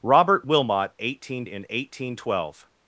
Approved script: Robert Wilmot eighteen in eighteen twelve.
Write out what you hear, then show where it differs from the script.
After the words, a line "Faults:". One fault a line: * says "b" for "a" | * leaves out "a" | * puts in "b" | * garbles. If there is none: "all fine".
Robert Wilmot eighteen in eighteen twelve.
Faults:
all fine